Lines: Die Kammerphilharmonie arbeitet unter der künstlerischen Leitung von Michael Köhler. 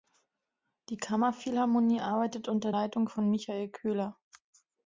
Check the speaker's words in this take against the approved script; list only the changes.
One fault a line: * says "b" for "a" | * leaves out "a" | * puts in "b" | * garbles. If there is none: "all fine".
* leaves out "der künstlerischen"